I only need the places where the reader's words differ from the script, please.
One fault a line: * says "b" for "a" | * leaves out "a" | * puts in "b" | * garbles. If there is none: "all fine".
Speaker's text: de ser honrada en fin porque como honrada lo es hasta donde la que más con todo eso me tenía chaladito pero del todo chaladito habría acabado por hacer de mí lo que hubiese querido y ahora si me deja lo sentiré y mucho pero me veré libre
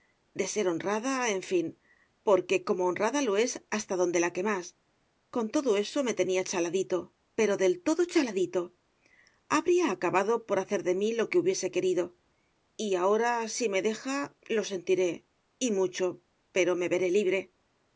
all fine